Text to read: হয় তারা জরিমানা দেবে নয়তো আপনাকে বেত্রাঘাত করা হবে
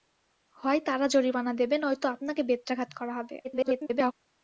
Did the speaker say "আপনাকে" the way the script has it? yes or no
yes